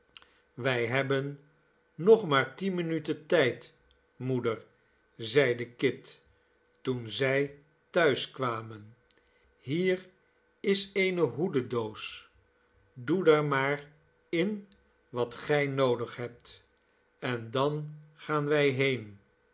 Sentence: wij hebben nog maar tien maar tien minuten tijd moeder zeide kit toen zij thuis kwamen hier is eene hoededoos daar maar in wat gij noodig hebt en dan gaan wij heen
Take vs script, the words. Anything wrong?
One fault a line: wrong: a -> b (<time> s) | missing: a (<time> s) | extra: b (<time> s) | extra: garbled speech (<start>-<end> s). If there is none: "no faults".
missing: maar tien (2.7 s)
extra: doe (12.9 s)